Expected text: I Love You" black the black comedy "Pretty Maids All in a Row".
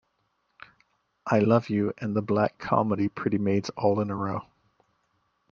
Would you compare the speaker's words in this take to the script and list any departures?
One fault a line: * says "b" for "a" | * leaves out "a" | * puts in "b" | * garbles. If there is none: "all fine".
* says "and" for "black"